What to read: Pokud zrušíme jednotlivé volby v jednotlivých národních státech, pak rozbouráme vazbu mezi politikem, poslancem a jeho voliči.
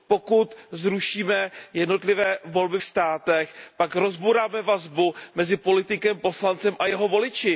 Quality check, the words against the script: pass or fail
fail